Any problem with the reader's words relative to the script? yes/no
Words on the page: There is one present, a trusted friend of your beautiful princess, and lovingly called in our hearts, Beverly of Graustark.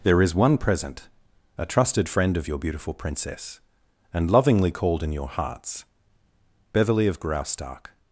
yes